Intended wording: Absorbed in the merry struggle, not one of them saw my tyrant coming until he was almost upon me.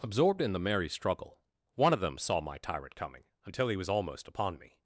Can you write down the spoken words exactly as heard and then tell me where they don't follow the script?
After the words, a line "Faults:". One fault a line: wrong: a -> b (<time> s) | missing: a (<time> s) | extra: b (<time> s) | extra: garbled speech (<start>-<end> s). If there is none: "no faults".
Absorbed in the merry struggle, one of them saw my tyrant coming until he was almost upon me.
Faults:
missing: not (1.4 s)